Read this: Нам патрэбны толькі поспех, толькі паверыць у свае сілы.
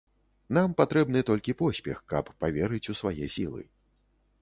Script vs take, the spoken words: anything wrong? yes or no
yes